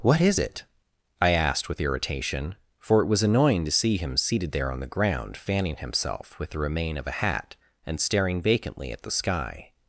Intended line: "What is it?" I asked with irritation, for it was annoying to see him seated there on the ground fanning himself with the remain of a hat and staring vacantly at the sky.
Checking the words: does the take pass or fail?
pass